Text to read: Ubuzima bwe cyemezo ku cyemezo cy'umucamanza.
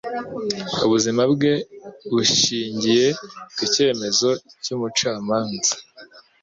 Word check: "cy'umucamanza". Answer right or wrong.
right